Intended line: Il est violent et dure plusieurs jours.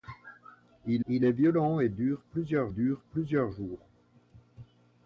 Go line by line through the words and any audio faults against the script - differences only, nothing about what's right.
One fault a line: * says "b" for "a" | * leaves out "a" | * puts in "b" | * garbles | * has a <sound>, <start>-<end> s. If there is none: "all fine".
* puts in "il"
* puts in "dure plusieurs"